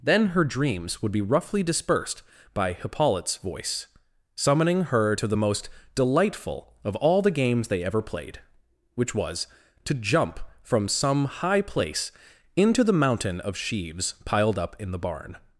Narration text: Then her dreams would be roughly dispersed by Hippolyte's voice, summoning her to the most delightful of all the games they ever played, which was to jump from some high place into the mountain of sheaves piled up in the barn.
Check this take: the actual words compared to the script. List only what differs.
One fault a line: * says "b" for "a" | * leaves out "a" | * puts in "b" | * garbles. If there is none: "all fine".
all fine